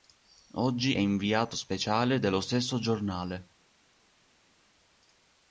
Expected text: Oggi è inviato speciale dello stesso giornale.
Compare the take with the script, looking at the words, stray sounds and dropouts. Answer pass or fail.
fail